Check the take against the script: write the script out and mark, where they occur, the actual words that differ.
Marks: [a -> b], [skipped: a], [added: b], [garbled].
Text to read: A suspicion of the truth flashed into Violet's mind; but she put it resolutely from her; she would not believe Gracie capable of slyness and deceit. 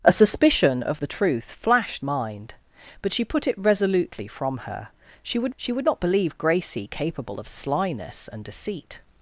A suspicion of the truth flashed [skipped: into Violet's] mind; but she put it resolutely from her; she would [added: she would] not believe Gracie capable of slyness and deceit.